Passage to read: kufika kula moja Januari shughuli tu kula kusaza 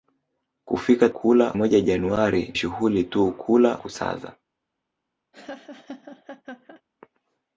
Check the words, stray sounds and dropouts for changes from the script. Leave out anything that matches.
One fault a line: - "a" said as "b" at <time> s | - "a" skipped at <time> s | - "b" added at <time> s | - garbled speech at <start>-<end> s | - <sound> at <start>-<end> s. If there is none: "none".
- laugh at 5.3-6.8 s